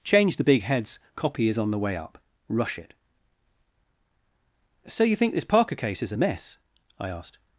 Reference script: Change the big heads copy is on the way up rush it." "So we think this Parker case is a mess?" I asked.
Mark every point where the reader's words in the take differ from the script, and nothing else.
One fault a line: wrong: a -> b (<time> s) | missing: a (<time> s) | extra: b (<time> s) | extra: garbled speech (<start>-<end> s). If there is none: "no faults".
wrong: we -> you (5.0 s)